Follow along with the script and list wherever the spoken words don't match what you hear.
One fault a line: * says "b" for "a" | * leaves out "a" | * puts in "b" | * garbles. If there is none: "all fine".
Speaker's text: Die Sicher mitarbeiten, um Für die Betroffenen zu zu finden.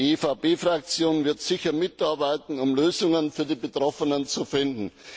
* puts in "EVP Fraktion wird"
* puts in "Lösungen"
* leaves out "zu"